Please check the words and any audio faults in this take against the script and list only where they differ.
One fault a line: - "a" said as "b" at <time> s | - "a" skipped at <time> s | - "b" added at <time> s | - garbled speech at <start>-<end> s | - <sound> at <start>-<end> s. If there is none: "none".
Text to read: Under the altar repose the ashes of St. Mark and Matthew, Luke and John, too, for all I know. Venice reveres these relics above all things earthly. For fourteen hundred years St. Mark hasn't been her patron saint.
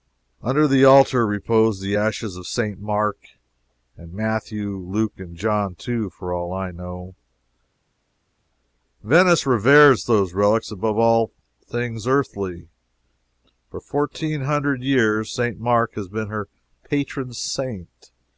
- "these" said as "those" at 10.0 s
- "hasn't" said as "has" at 15.9 s